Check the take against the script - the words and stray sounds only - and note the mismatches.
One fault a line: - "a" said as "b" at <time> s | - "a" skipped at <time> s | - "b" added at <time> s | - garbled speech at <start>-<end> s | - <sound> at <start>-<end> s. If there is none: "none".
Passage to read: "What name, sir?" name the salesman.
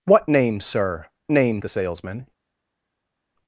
none